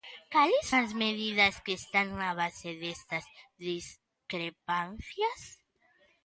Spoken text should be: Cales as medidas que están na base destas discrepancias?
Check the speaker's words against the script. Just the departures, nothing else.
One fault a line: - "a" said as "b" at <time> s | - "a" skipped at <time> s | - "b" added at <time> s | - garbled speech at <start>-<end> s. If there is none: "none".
none